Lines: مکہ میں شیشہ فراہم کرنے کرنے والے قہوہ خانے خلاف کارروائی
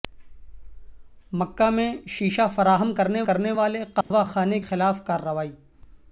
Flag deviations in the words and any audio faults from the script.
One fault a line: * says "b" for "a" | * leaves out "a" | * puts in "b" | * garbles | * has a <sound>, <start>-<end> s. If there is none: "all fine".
* has a dropout, 4.0-4.1 s